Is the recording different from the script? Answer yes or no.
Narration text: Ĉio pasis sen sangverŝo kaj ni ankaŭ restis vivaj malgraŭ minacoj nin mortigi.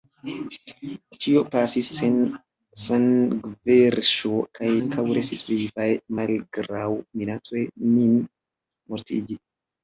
yes